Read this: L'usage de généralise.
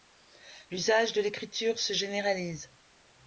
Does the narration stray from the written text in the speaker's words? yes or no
yes